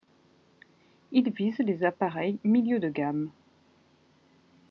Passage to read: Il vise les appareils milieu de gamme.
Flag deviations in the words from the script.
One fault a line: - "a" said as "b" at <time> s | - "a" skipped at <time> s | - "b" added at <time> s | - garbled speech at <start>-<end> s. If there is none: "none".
none